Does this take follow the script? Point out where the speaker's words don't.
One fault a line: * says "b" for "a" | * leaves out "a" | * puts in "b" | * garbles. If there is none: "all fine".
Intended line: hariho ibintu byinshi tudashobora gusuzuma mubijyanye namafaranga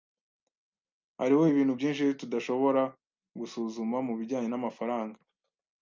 all fine